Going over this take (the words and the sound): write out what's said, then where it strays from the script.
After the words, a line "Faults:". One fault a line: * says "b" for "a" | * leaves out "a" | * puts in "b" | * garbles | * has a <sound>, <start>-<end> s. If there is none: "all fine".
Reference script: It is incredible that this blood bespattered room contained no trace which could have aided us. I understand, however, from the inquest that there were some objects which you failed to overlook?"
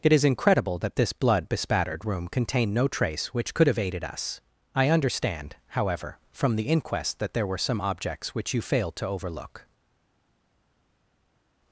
It is incredible that this blood bespattered room contained no trace which could have aided us. I understand, however, from the inquest that there were some objects which you failed to overlook?"
Faults:
all fine